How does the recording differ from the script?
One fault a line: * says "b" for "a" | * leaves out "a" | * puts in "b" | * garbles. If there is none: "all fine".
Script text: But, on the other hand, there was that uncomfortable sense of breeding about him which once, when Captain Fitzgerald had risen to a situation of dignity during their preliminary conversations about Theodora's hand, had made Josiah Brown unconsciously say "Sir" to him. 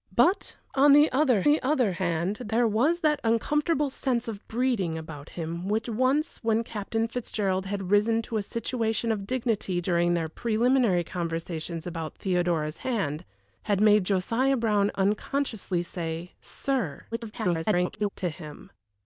* puts in "the other"
* garbles